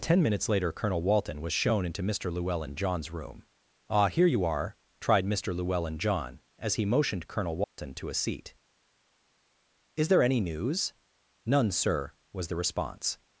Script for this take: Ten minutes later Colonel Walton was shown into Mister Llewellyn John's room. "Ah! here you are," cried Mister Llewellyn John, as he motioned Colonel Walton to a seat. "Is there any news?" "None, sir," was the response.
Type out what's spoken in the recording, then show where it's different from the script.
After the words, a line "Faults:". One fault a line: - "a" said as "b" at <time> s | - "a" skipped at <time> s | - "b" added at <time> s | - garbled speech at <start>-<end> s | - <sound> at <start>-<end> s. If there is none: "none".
Ten minutes later Colonel Walton was shown into Mister Llewellyn John's room. "Ah! here you are," tried Mister Llewellyn John, as he motioned Colonel Walton to a seat. "Is there any news?" "None, sir," was the response.
Faults:
- "cried" said as "tried" at 5.0 s
- dropout at 7.6-7.8 s